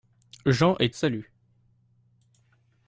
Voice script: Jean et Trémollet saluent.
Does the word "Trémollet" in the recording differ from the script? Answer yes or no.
yes